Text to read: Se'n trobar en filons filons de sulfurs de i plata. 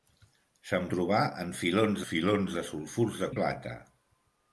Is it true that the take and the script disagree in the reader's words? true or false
false